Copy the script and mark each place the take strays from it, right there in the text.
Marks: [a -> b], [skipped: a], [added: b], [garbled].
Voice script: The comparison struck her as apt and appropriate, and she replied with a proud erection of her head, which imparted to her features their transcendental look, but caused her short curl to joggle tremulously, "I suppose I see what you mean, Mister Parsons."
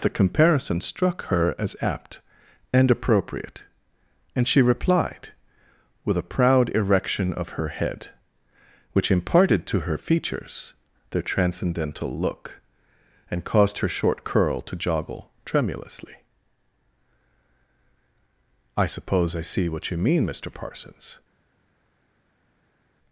The comparison struck her as apt and appropriate, and she replied with a proud erection of her head, which imparted to her features their transcendental look, [but -> and] caused her short curl to joggle tremulously, "I suppose I see what you mean, Mister Parsons."